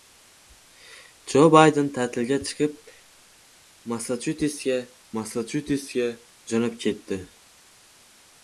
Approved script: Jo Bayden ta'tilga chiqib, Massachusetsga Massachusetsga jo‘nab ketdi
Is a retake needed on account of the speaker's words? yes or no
no